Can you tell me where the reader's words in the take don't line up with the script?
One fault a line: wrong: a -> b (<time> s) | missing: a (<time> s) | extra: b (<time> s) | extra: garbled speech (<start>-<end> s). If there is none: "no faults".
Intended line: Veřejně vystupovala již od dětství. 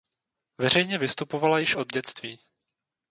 no faults